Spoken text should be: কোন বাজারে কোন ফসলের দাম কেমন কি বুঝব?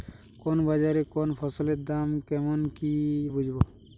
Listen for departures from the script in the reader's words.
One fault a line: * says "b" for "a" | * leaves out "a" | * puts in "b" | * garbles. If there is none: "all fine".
all fine